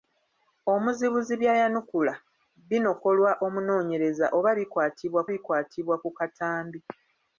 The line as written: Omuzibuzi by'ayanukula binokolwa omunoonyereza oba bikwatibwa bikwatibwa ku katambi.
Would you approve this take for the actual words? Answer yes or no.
yes